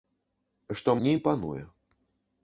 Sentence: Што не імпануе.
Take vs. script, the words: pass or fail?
pass